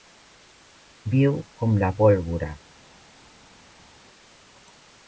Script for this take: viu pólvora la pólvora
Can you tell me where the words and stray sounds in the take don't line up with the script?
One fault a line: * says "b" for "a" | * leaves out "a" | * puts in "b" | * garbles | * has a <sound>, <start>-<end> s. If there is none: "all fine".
* says "com" for "pólvora"